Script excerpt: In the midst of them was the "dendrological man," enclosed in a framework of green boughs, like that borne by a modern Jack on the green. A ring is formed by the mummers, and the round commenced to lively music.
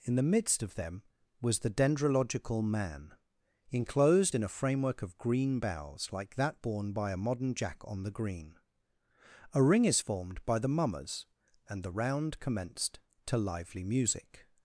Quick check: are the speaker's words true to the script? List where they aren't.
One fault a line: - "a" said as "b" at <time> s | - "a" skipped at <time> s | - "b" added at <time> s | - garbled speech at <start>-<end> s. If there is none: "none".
none